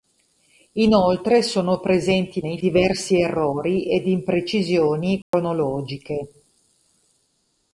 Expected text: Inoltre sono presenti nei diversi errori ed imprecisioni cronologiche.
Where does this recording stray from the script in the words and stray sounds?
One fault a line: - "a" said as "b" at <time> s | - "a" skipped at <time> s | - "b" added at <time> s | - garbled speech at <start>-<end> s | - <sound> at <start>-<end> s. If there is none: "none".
- dropout at 5.2-5.3 s